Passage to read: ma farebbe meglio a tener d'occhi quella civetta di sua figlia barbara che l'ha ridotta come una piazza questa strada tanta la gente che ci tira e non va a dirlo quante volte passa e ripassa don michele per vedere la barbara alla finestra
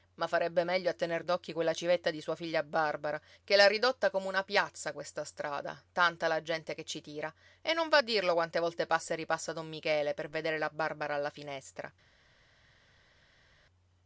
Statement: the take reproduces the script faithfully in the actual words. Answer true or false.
true